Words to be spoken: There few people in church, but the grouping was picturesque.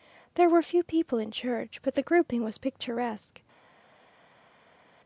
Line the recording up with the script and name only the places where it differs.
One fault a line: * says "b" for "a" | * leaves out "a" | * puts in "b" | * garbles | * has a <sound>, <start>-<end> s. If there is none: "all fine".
* puts in "were"